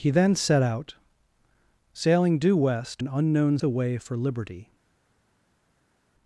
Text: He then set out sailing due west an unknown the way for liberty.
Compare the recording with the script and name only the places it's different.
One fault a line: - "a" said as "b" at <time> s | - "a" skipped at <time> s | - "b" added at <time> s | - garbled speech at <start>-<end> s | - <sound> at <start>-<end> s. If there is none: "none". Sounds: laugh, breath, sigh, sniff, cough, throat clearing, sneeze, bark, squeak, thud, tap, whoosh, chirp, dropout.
none